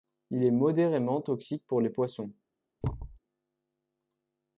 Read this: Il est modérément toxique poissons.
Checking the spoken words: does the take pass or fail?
fail